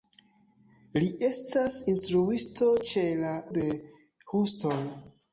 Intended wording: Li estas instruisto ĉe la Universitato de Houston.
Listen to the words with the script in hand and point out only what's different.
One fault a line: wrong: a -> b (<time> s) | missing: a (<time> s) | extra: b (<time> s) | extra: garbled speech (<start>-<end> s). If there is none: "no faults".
missing: Universitato (3.4 s)